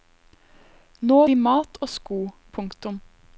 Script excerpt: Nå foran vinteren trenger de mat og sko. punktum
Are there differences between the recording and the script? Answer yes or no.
yes